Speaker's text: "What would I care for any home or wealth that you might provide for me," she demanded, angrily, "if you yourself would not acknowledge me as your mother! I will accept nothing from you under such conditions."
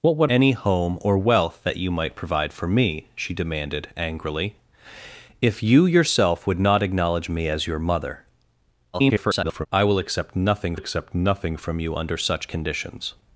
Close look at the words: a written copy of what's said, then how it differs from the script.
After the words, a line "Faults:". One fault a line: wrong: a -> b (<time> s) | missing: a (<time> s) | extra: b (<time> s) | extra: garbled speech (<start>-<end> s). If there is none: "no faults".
"What would any home or wealth that you might provide for me," she demanded, angrily, "if you yourself would not acknowledge me as your mother! [garbled] I will accept nothing accept nothing from you under such conditions."
Faults:
missing: I care for (0.3 s)
extra: garbled speech (8.9-9.7 s)
extra: accept nothing (10.7 s)